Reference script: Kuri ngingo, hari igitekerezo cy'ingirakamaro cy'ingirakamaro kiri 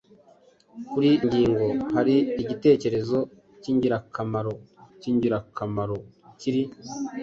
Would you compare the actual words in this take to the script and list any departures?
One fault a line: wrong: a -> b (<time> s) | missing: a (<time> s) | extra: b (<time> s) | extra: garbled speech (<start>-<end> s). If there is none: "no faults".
no faults